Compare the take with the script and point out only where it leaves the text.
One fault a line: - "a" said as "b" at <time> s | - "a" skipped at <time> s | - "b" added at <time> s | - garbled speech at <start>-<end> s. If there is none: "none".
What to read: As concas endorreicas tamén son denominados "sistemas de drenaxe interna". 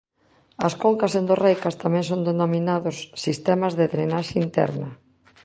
none